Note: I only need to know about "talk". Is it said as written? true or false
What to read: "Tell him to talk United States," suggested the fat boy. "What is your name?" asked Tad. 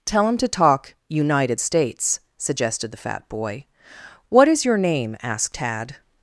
true